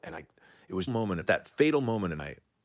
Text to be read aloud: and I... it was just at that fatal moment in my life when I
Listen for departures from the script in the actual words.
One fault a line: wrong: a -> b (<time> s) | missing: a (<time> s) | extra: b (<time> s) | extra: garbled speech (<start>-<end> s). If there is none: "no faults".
wrong: just -> moment (0.9 s)
missing: my life when (2.2 s)